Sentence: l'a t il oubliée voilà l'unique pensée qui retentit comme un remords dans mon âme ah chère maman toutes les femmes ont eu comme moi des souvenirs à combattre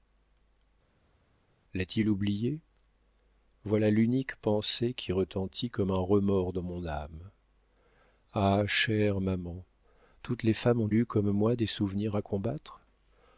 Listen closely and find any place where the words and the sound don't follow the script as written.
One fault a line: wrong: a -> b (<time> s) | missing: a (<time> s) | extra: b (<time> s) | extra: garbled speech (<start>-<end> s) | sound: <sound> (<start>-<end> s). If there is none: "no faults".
no faults